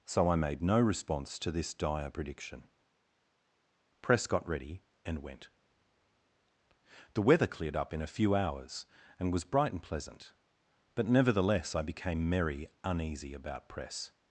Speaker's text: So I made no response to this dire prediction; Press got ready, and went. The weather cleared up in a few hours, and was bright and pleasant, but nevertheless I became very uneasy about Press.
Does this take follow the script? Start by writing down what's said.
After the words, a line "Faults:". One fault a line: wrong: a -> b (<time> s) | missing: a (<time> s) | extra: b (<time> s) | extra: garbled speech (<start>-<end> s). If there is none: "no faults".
So I made no response to this dire prediction; Press got ready, and went. The weather cleared up in a few hours, and was bright and pleasant, but nevertheless I became merry uneasy about Press.
Faults:
wrong: very -> merry (12.3 s)